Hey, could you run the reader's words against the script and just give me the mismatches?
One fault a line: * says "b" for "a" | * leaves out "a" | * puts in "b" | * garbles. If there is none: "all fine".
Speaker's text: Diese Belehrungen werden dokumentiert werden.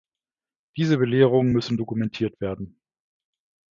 * says "müssen" for "werden"